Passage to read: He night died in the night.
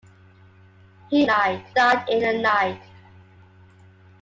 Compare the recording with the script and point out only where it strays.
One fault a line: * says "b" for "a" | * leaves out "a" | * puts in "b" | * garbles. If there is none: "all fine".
all fine